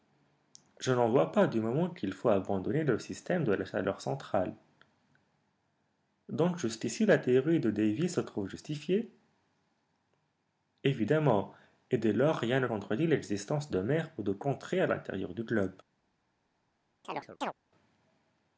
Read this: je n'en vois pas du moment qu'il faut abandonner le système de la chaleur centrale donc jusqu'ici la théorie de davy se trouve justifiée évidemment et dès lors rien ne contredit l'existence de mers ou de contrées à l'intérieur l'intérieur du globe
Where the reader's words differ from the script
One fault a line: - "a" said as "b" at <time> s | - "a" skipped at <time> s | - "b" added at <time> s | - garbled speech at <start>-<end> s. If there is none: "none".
- "l'intérieur" skipped at 15.3 s